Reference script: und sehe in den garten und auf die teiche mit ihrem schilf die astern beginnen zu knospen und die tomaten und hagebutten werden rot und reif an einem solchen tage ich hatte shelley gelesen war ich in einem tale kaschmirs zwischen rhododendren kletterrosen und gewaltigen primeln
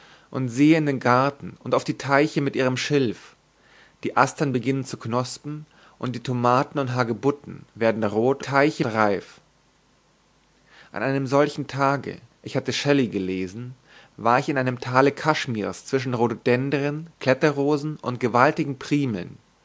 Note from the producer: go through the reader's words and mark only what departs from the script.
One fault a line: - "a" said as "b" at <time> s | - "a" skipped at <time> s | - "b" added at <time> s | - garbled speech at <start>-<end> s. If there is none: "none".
- "und" said as "teiche" at 8.4 s